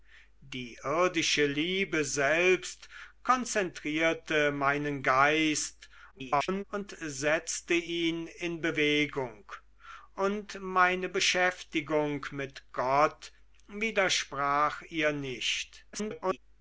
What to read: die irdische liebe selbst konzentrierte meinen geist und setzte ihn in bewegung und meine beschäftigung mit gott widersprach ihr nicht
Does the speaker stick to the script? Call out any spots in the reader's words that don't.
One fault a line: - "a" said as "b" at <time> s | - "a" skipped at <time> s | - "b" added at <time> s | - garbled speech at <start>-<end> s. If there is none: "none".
- garbled speech at 6.1-6.6 s
- garbled speech at 15.9-16.4 s